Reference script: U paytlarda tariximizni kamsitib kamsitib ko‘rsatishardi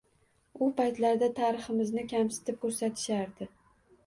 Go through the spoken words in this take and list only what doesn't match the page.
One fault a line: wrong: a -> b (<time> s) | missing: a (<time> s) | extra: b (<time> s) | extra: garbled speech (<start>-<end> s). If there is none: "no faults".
missing: kamsitib (2.6 s)